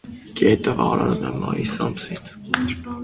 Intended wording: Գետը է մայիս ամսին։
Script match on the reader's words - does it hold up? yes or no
no